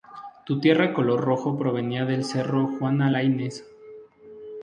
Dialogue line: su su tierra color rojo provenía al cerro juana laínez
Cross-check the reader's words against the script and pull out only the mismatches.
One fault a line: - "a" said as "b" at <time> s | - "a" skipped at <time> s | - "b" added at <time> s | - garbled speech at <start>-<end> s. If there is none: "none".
- "su" skipped at 0.6 s
- "al" said as "del" at 2.0 s